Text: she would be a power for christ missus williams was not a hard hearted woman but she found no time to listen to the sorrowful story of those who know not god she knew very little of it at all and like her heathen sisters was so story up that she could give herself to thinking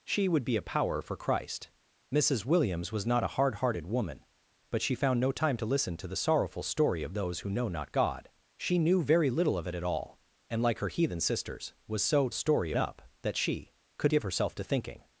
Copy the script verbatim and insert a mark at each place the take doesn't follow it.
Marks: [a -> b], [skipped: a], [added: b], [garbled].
she would be a power for christ missus williams was not a hard hearted woman but she found no time to listen to the sorrowful story of those who know not god she knew very little of it at all and like her heathen sisters was so story up that she could give herself to thinking